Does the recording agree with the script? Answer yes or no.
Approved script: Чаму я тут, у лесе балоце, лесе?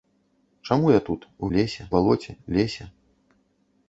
yes